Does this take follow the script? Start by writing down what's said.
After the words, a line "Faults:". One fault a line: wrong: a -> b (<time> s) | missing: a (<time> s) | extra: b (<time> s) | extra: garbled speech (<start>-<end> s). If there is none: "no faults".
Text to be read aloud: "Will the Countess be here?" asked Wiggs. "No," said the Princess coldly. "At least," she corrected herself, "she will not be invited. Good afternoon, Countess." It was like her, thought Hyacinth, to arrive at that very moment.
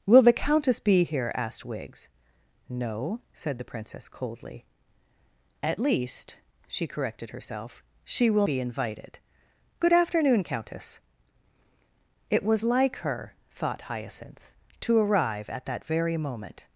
"Will the Countess be here?" asked Wiggs. "No," said the Princess coldly. "At least," she corrected herself, "she will be invited. Good afternoon, Countess." It was like her, thought Hyacinth, to arrive at that very moment.
Faults:
missing: not (8.5 s)